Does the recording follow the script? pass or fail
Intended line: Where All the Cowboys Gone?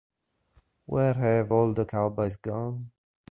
fail